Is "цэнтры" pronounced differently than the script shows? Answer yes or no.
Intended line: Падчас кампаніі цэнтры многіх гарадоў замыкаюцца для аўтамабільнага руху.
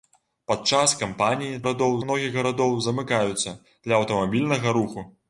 yes